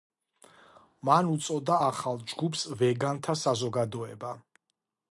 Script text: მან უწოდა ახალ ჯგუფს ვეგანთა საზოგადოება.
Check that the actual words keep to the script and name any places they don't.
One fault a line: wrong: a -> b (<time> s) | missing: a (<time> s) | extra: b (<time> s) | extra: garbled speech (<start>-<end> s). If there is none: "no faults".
no faults